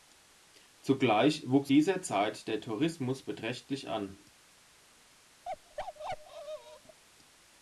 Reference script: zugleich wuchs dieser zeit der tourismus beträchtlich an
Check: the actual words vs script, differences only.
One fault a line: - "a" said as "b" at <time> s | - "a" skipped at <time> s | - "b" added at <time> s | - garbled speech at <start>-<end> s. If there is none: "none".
none